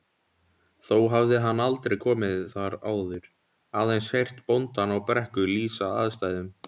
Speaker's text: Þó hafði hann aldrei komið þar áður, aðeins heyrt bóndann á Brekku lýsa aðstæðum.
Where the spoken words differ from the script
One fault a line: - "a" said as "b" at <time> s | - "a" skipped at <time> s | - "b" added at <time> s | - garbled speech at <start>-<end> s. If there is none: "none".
none